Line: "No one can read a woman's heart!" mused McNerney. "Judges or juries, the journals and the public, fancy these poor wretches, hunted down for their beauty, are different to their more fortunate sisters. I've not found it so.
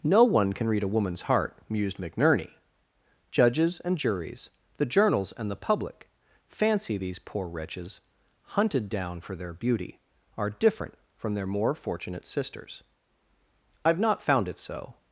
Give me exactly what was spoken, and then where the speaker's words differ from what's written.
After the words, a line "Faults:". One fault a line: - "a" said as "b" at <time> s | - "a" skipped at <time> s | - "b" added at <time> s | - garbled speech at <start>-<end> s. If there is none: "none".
"No one can read a woman's heart!" mused McNerney. "Judges and juries, the journals and the public, fancy these poor wretches, hunted down for their beauty, are different from their more fortunate sisters. I've not found it so.
Faults:
- "or" said as "and" at 3.8 s
- "to" said as "from" at 11.2 s